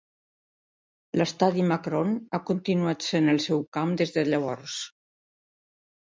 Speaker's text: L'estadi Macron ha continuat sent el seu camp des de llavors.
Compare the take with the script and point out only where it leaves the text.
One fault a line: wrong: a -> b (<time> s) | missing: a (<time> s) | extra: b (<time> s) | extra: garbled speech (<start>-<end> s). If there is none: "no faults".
no faults